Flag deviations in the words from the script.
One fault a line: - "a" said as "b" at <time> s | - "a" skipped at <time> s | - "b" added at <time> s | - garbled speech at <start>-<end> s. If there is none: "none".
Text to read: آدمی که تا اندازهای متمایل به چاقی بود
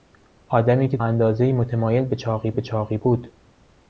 - "تا" skipped at 1.0 s
- "به چاقی" added at 2.5 s